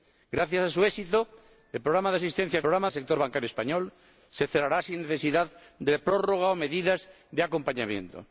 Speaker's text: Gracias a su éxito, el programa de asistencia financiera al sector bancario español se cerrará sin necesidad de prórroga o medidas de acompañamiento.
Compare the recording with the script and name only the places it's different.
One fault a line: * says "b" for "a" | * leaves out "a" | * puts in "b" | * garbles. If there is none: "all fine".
* says "programa" for "financiera"